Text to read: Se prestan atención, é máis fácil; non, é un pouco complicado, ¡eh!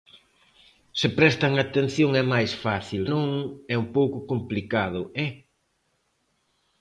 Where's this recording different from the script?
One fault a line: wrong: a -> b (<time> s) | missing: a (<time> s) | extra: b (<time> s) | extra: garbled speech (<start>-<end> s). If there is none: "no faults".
no faults